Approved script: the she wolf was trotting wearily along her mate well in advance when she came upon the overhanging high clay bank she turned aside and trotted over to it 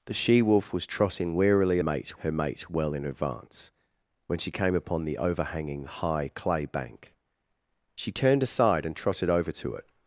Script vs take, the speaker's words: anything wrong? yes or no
yes